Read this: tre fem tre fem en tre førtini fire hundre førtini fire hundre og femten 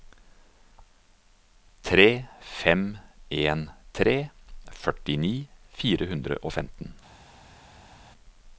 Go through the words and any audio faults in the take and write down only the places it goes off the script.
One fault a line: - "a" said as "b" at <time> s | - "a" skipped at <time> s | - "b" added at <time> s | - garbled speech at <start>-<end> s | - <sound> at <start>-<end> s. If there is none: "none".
- "tre fem" skipped at 2.9 s
- "førtini fire hundre" skipped at 6.4 s